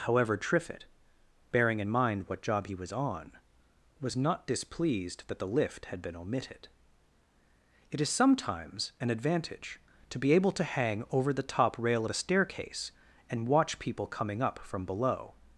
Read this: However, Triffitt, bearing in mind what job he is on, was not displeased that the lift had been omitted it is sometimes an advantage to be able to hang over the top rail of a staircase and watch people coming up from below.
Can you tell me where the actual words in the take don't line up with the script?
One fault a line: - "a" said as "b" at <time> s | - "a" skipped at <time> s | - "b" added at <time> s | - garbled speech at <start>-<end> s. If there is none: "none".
- "is" said as "was" at 2.8 s